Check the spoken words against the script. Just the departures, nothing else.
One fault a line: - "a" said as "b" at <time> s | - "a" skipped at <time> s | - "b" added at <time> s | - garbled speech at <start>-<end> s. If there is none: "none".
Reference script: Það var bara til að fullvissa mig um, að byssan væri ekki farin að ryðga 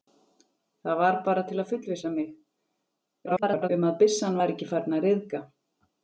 - garbled speech at 3.3-3.7 s